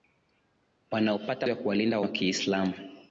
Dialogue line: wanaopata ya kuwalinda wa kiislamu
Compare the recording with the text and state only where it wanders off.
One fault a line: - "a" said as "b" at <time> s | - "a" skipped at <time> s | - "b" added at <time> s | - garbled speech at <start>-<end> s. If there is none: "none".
none